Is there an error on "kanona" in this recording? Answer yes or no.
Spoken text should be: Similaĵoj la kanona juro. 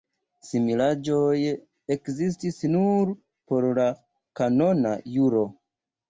no